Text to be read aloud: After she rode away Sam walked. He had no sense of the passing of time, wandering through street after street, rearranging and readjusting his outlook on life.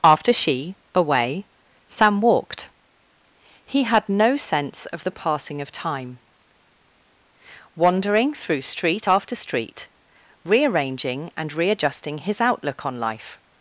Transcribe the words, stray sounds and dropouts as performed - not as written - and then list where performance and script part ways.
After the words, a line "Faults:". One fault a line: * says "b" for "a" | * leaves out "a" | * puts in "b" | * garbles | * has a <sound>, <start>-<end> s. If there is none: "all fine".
After she away Sam walked. He had no sense of the passing of time, wandering through street after street, rearranging and readjusting his outlook on life.
Faults:
* leaves out "rode"